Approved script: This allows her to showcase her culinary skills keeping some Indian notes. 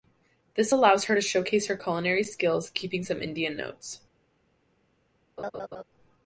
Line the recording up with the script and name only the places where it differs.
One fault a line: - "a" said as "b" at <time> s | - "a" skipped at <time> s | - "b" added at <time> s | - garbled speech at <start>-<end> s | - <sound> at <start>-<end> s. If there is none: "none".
- laugh at 5.4-5.8 s